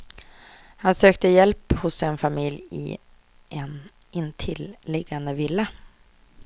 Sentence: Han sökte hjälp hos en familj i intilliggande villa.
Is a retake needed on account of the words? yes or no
yes